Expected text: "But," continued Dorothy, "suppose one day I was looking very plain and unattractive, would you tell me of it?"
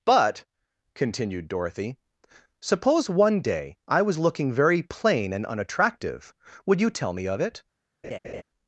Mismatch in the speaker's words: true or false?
false